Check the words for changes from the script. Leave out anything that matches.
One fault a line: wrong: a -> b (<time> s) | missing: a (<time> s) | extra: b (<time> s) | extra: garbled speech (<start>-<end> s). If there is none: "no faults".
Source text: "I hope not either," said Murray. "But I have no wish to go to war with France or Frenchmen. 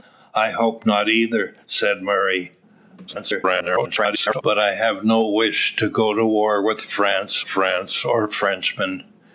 extra: garbled speech (3.1-4.4 s)
extra: France (7.4 s)